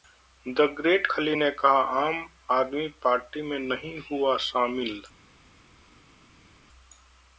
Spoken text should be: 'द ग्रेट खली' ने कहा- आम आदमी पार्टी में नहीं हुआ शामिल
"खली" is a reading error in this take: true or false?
false